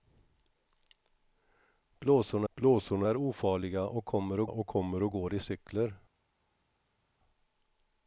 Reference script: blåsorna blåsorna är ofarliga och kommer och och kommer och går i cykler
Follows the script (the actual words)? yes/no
yes